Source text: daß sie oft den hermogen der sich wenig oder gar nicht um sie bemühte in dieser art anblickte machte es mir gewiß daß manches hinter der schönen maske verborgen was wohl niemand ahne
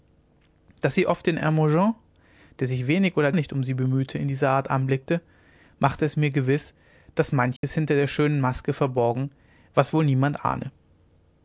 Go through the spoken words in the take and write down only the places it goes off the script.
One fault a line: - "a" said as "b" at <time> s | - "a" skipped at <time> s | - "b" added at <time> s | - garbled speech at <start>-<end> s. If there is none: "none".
- "gar" skipped at 3.3 s